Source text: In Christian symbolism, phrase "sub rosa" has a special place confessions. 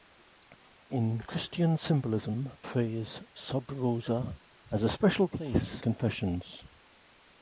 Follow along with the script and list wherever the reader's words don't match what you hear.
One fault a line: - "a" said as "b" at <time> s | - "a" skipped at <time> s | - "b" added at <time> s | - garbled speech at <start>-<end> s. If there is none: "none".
none